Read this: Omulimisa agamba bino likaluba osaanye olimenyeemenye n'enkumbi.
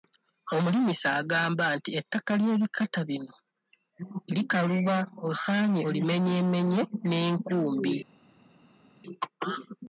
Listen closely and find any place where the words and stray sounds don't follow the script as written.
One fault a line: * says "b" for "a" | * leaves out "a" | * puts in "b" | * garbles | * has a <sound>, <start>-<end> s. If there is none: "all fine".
* puts in "nti ettaka ly'ebikata"